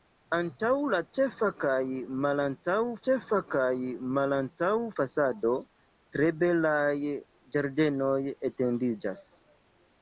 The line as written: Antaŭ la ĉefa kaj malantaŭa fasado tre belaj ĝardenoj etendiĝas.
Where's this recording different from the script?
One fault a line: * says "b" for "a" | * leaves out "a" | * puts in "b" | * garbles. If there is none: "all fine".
* puts in "ĉefa kaj malantaŭa"